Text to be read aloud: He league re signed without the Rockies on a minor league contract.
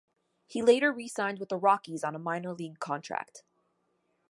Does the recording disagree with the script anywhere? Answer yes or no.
yes